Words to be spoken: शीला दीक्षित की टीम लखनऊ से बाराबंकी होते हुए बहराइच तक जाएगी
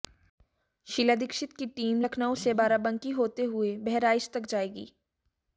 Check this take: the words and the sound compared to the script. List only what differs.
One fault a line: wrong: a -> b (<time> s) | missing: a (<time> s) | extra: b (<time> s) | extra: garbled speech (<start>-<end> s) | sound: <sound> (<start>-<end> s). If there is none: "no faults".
no faults